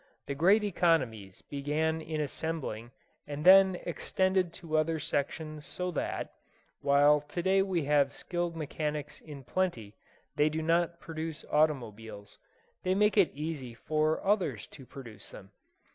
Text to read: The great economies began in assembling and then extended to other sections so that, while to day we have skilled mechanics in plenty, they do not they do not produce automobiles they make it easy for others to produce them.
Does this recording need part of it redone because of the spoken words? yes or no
yes